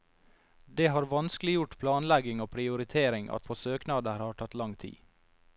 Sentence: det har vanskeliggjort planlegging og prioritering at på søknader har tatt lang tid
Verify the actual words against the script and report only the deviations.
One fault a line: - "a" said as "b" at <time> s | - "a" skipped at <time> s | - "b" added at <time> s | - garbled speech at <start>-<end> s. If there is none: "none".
none